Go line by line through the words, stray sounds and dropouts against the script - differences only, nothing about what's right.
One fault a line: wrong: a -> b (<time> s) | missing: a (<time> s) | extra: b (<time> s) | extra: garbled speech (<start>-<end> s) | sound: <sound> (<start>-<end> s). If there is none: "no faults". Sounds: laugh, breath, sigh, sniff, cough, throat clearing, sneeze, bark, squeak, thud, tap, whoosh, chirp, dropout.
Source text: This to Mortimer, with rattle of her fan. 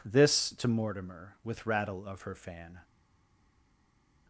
no faults